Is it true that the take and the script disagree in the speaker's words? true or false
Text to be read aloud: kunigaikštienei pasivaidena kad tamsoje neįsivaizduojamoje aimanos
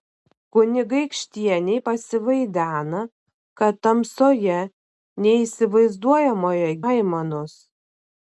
false